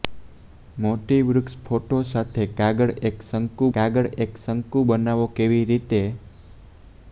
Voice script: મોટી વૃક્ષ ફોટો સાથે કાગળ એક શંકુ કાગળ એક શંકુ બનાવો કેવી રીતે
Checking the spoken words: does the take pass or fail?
pass